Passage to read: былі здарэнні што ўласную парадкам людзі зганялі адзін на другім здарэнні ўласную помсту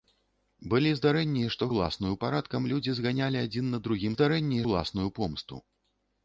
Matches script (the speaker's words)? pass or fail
pass